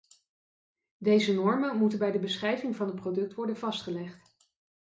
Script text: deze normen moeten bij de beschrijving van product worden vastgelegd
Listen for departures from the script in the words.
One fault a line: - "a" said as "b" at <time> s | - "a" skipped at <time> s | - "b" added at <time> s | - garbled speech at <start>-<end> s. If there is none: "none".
- "het" added at 2.9 s